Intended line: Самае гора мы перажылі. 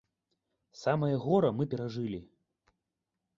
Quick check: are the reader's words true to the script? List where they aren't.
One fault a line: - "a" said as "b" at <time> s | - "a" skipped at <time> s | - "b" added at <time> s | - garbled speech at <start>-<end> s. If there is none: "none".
none